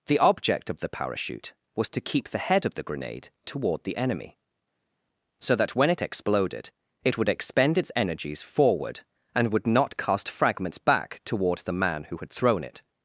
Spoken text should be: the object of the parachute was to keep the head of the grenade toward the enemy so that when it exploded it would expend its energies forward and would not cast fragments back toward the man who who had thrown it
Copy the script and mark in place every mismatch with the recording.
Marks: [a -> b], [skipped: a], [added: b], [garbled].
the object of the parachute was to keep the head of the grenade toward the enemy so that when it exploded it would expend its energies forward and would not cast fragments back toward the man who [skipped: who] had thrown it